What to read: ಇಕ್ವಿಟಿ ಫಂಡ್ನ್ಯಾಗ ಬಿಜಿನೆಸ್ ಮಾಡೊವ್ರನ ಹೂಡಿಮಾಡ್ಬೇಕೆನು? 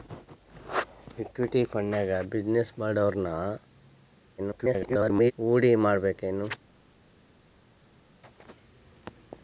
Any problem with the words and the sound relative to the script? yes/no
yes